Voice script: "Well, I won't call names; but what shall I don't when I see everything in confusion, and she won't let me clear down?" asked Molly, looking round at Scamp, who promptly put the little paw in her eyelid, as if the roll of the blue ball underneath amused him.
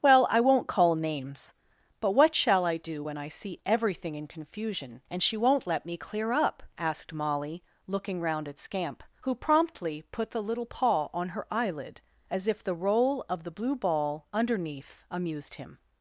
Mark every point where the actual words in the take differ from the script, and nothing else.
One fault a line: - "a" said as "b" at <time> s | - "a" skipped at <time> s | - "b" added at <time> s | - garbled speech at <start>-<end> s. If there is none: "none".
- "don't" said as "do" at 2.8 s
- "down" said as "up" at 6.3 s
- "in" said as "on" at 11.1 s